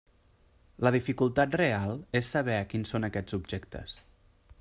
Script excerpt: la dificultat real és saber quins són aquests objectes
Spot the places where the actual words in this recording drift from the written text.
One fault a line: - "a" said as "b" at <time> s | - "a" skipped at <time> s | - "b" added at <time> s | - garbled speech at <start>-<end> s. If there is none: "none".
none